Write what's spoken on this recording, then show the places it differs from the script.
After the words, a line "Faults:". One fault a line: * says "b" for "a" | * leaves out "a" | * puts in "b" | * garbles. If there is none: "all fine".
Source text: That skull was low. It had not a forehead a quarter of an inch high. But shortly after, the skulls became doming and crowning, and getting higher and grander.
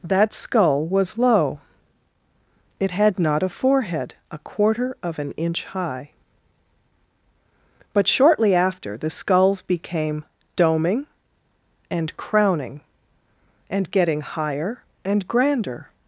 That skull was low. It had not a forehead a quarter of an inch high. But shortly after, the skulls became doming and crowning, and getting higher and grander.
Faults:
all fine